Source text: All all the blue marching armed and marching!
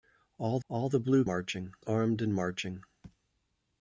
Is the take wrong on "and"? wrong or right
right